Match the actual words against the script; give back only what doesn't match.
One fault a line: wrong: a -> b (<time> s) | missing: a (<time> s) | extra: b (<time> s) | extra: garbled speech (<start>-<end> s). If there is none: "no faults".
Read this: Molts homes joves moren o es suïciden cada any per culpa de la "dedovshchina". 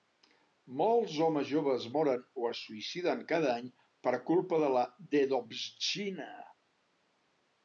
no faults